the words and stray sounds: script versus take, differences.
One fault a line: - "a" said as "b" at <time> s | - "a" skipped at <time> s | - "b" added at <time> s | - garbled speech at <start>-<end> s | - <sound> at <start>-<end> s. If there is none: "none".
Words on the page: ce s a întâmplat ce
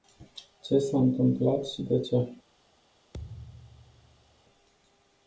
- "și de" added at 1.7 s
- thud at 3.1-4.4 s